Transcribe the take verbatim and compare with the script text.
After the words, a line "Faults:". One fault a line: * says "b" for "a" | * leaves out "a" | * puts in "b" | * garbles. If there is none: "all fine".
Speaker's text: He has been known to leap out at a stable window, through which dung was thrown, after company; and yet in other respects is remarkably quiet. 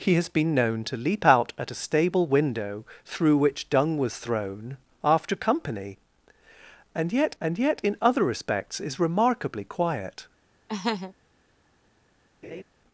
He has been known to leap out at a stable window, through which dung was thrown, after company; and yet and yet in other respects is remarkably quiet.
Faults:
* puts in "and yet"